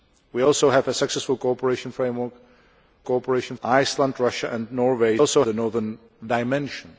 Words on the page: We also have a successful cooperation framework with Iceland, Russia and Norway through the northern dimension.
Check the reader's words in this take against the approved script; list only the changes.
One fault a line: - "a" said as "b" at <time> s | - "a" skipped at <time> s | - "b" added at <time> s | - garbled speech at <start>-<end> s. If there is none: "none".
- "with" said as "cooperation" at 3.0 s
- "through" said as "also" at 5.2 s